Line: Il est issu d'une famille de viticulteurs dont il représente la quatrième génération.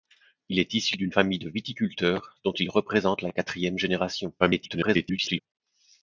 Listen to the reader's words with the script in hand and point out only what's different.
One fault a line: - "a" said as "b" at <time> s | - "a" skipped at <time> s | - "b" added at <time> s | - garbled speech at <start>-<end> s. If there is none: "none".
- garbled speech at 4.4-5.4 s